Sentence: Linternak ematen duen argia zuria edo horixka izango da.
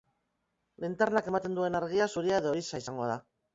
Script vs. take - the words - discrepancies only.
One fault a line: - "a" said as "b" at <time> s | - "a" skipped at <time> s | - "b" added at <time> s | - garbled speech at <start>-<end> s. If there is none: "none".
none